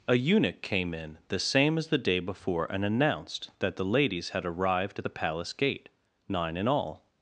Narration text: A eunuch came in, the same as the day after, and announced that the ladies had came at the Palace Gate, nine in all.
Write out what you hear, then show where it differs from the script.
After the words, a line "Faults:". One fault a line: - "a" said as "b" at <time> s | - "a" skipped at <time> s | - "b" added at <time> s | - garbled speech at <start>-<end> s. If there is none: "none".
A eunuch came in, the same as the day before, and announced that the ladies had arrived at the Palace Gate, nine in all.
Faults:
- "after" said as "before" at 2.2 s
- "came" said as "arrived" at 4.5 s